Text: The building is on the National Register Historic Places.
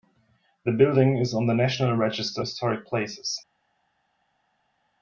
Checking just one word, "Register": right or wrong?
right